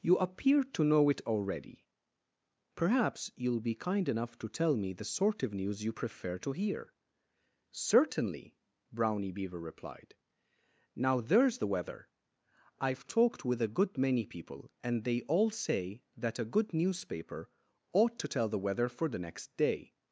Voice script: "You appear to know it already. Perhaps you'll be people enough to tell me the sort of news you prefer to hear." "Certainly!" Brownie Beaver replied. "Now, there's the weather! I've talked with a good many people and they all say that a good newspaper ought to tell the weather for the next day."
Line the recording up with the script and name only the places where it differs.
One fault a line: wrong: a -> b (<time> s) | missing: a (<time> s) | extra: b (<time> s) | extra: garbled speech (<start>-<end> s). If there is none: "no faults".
wrong: people -> kind (3.9 s)